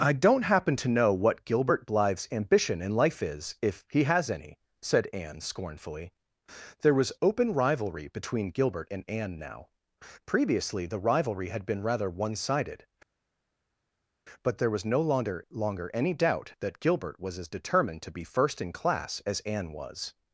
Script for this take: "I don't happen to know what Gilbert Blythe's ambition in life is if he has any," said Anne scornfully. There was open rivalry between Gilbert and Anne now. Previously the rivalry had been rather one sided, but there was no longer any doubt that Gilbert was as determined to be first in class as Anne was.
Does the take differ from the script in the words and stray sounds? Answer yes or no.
yes